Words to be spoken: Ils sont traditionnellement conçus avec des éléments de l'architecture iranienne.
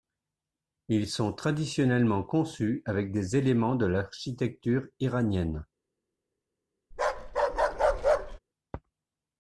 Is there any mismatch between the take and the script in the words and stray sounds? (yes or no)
yes